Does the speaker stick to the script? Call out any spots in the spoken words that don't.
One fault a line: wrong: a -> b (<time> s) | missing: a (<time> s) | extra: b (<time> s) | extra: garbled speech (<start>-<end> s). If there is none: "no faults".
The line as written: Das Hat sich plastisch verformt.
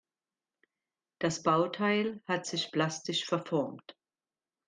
extra: Bauteil (1.4 s)